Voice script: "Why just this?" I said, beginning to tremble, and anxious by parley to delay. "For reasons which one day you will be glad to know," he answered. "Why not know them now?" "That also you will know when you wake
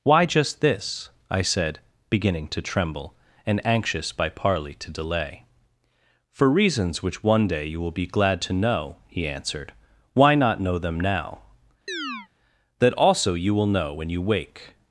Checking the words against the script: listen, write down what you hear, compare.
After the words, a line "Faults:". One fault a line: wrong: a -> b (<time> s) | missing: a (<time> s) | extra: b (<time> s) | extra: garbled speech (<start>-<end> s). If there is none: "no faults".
"Why just this?" I said, beginning to tremble, and anxious by parley to delay. "For reasons which one day you will be glad to know," he answered. "Why not know them now?" "That also you will know when you wake
Faults:
no faults